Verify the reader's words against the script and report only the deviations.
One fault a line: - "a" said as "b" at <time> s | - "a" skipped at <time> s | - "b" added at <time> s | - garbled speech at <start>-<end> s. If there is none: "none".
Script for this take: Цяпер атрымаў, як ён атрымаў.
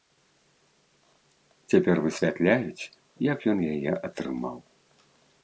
- "атрымаў" said as "высвятляюць" at 2.1 s
- "яе" added at 3.8 s